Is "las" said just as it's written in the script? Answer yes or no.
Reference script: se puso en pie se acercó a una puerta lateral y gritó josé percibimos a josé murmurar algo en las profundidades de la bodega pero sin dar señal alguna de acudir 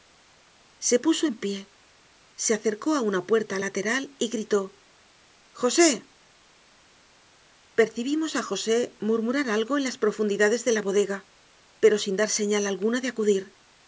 yes